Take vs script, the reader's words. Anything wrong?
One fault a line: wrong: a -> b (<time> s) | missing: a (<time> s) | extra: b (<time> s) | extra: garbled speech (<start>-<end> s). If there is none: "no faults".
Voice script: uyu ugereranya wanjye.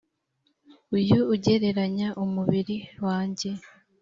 extra: umubiri (2.2 s)